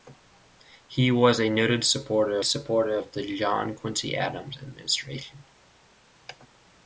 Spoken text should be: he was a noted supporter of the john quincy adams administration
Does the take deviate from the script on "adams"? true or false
false